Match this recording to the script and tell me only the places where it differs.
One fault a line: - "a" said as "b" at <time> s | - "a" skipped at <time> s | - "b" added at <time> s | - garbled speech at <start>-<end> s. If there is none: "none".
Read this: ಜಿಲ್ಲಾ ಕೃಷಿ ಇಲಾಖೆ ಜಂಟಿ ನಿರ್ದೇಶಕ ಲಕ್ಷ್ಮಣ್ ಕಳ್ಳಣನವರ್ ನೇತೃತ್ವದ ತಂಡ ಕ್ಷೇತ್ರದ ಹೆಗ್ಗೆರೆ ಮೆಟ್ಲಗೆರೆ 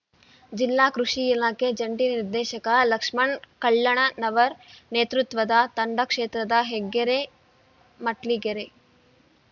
none